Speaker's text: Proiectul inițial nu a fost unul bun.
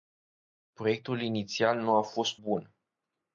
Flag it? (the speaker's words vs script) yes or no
yes